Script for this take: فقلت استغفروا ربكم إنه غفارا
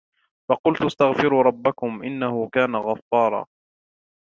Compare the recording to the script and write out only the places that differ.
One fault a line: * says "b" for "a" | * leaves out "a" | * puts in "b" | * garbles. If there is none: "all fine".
* puts in "كان"